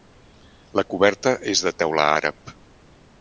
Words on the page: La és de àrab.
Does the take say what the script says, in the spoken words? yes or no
no